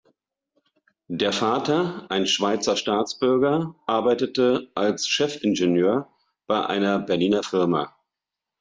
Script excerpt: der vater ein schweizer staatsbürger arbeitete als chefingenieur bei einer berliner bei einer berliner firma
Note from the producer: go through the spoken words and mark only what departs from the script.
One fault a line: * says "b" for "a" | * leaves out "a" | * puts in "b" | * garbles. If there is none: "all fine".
* leaves out "bei einer berliner"